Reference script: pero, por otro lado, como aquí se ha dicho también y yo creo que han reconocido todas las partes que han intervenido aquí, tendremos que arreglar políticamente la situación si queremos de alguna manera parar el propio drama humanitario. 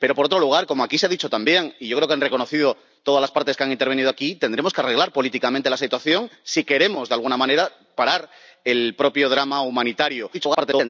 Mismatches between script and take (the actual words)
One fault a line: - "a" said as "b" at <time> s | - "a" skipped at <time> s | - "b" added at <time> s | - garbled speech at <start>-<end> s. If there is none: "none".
- garbled speech at 10.3-10.9 s